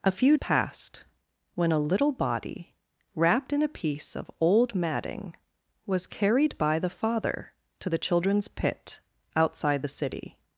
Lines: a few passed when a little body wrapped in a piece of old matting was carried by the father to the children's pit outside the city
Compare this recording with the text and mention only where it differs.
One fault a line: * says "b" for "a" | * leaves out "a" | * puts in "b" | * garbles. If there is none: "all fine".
all fine